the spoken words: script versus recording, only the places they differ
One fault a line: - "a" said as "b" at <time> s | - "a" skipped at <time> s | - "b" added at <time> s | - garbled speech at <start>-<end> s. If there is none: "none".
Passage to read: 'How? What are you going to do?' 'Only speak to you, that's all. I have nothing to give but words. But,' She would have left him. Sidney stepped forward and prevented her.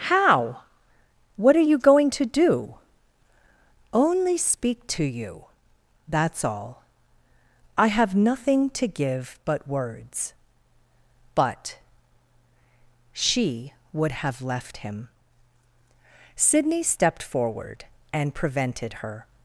none